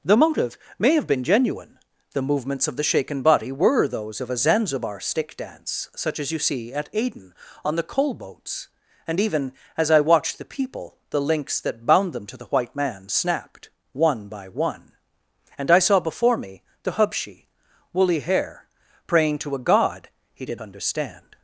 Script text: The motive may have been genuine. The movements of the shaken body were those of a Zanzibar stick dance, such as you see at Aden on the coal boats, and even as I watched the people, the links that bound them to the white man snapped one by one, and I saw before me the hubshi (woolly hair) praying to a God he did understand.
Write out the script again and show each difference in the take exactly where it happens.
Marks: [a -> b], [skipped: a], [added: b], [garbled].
The motive may have been genuine. The movements of the shaken body were those of a Zanzibar stick dance, such as you see at Aden on the coal boats, and even as I watched the people, the links that bound them to the white man snapped one by one, and I saw before me the hubshi (woolly hair) praying to a God he did understand.